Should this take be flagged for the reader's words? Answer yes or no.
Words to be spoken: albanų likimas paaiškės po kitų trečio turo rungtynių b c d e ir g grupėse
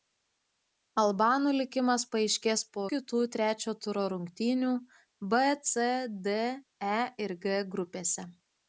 no